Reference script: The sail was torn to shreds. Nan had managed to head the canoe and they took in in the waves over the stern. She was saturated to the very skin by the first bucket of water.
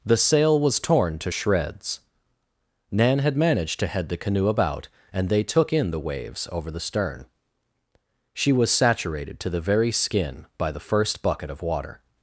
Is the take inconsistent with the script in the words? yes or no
yes